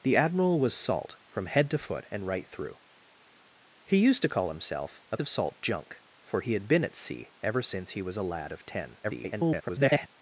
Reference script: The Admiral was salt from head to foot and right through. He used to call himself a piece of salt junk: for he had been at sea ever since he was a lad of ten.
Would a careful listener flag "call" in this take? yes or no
no